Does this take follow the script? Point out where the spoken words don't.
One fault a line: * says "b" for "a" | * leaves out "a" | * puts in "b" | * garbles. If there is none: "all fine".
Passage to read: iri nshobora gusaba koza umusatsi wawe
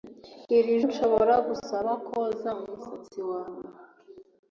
all fine